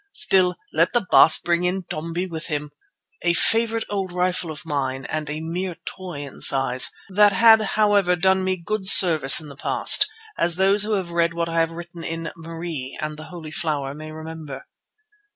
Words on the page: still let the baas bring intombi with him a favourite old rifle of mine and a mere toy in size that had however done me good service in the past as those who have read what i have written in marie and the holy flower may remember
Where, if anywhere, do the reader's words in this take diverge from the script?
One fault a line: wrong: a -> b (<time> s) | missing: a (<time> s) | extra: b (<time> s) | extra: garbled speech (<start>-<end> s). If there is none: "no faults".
no faults